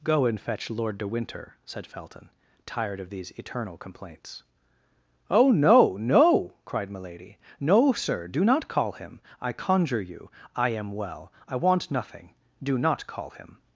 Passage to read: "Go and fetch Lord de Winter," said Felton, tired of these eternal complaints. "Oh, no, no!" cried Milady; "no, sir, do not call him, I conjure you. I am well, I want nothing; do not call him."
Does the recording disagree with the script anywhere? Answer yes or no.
no